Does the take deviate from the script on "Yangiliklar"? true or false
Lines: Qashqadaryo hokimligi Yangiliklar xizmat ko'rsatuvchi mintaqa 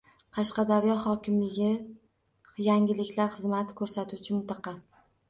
false